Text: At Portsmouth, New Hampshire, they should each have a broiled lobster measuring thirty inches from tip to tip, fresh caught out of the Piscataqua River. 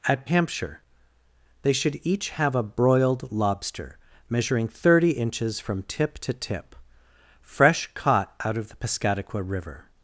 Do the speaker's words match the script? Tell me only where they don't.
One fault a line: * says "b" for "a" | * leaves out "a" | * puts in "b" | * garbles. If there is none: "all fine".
* leaves out "Portsmouth New"